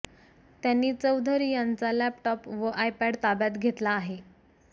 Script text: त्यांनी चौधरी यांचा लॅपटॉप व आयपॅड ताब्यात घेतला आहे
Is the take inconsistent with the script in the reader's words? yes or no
no